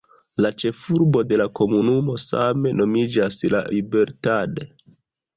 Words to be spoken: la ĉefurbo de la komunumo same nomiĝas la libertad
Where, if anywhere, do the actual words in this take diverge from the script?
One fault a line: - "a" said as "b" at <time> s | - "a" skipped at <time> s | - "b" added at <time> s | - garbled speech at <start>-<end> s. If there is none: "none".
none